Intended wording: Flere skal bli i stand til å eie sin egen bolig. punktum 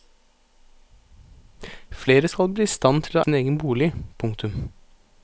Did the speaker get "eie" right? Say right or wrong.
wrong